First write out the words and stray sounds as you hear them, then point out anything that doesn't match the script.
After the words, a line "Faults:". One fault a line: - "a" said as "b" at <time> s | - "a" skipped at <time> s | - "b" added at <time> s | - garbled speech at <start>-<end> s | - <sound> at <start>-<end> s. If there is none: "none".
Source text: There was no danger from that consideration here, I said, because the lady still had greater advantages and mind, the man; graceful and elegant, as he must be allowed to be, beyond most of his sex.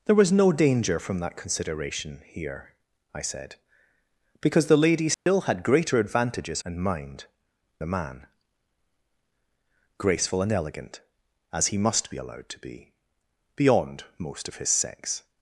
There was no danger from that consideration here, I said, because the lady still had greater advantages and mind, the man; graceful and elegant, as he must be allowed to be, beyond most of his sex.
Faults:
- dropout at 5.1-5.3 s